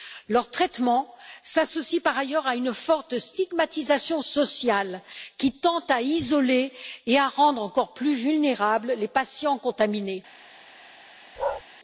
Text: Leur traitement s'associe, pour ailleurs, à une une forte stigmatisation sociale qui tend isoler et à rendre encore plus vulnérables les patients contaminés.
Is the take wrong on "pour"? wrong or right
wrong